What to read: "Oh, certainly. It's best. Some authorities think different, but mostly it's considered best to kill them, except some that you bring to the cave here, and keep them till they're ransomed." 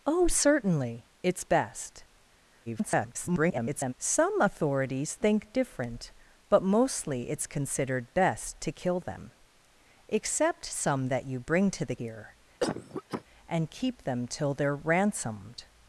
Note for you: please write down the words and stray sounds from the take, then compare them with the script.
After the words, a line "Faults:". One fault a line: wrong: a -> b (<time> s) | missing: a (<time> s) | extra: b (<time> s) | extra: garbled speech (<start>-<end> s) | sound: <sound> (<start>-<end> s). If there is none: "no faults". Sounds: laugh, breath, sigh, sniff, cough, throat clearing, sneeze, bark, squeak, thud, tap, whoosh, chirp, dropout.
"Oh, certainly. It's best. [garbled] Some authorities think different, but mostly it's considered best to kill them, except some that you bring to the here, and keep them till they're ransomed."
Faults:
extra: garbled speech (2.7-3.9 s)
missing: cave (12.0 s)
sound: cough (12.6-13.2 s)